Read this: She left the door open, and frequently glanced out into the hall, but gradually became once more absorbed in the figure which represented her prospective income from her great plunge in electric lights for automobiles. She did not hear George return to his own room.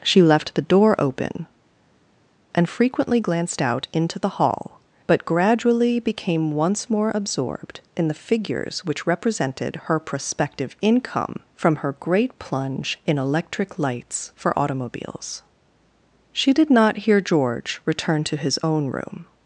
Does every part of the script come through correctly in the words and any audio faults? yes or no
no